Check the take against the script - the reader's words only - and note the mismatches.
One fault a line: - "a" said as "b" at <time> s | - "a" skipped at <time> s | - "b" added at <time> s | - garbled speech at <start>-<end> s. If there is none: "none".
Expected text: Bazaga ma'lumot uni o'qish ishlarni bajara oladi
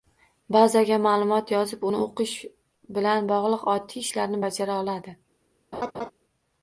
- "yozib" added at 1.6 s
- "bilan bog'liq oddiy" added at 3.0 s